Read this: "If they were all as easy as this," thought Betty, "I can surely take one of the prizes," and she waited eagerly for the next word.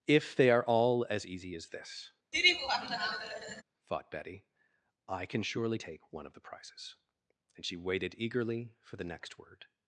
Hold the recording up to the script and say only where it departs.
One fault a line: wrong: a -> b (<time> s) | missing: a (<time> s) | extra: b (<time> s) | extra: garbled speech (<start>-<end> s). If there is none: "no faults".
wrong: were -> are (0.5 s)